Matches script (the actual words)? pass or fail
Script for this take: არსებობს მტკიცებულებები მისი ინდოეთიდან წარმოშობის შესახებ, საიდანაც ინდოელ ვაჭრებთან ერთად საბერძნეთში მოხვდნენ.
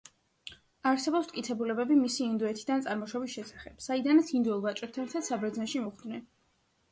pass